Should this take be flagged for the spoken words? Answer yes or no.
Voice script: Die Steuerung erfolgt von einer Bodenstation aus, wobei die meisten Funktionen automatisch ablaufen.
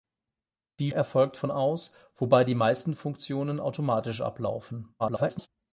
yes